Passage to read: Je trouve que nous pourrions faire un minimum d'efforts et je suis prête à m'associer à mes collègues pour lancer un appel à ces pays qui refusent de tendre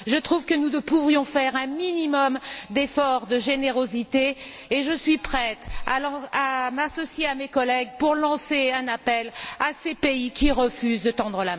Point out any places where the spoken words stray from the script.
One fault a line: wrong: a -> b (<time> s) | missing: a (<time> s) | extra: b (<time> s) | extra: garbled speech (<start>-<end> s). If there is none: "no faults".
extra: de générosité (3.3 s)